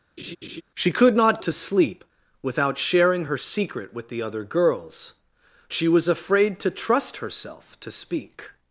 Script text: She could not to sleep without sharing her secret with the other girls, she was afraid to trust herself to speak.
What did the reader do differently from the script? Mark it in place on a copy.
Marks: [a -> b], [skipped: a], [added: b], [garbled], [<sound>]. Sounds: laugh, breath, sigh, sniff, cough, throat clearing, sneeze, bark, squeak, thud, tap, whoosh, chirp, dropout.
[laugh] She could not to sleep without sharing her secret with the other girls, she was afraid to trust herself to speak.